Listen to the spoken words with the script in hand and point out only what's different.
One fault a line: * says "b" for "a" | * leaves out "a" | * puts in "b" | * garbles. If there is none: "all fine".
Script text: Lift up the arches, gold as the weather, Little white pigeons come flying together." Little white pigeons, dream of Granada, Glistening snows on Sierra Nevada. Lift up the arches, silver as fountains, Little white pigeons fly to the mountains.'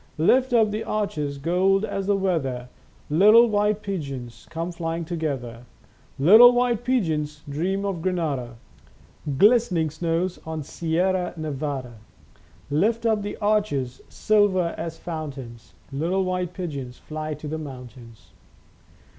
all fine